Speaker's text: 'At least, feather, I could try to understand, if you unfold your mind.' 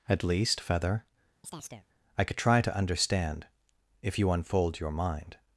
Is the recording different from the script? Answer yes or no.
no